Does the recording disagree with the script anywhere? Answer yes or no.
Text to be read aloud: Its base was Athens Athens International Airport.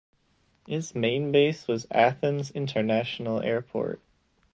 yes